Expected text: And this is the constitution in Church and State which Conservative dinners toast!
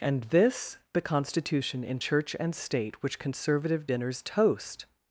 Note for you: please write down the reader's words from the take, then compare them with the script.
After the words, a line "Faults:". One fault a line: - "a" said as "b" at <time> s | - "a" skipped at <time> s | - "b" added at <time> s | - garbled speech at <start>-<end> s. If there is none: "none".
And this the constitution in Church and State which Conservative dinners toast!
Faults:
- "is" skipped at 0.8 s